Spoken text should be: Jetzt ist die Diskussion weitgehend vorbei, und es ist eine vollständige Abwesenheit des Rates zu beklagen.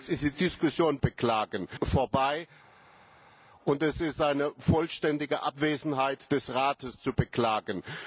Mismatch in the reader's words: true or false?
true